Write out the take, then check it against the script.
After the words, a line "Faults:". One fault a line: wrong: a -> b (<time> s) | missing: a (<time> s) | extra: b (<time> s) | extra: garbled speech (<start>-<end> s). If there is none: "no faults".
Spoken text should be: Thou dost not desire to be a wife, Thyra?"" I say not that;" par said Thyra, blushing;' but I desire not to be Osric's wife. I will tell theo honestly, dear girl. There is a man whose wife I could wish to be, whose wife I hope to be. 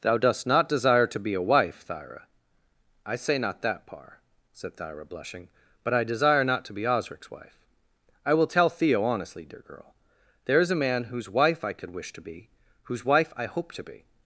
Thou dost not desire to be a wife, Thyra?"" I say not that;" par said Thyra, blushing;' but I desire not to be Osric's wife. I will tell theo honestly, dear girl. There is a man whose wife I could wish to be, whose wife I hope to be.
Faults:
no faults